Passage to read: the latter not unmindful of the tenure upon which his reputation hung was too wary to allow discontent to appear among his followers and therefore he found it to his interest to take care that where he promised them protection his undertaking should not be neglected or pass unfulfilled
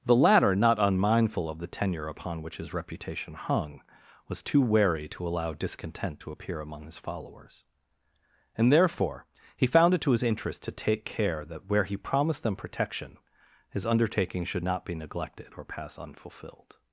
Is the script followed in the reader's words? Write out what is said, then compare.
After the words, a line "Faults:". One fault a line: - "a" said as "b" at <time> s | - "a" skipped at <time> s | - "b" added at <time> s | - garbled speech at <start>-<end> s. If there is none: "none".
the latter not unmindful of the tenure upon which his reputation hung was too wary to allow discontent to appear among his followers and therefore he found it to his interest to take care that where he promised them protection his undertaking should not be neglected or pass unfulfilled
Faults:
none